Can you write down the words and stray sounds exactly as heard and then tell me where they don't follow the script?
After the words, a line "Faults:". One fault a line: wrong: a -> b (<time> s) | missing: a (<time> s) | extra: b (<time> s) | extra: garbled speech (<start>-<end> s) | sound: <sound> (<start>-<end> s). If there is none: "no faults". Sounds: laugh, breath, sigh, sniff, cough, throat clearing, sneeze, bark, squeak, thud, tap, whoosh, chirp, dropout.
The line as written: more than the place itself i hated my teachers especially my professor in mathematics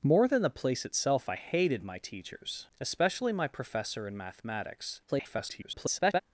more than the place itself i hated my teachers especially my professor in mathematics [garbled]
Faults:
extra: garbled speech (5.1-6.2 s)